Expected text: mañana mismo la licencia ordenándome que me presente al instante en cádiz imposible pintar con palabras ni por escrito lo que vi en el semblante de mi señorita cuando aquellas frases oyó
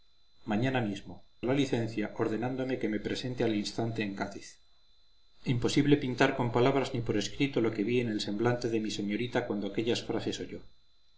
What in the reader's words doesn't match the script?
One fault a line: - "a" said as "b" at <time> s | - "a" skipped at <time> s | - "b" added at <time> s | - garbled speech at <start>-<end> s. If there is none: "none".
none